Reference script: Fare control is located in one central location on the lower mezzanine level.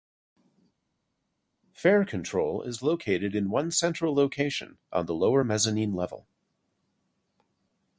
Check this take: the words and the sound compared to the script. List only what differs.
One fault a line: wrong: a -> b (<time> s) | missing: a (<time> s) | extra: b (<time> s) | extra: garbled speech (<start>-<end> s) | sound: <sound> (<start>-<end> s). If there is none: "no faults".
no faults